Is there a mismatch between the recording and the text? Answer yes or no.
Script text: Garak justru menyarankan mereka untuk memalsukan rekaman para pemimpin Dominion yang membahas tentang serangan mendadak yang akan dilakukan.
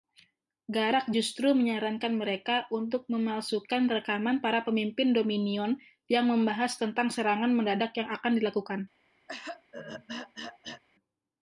no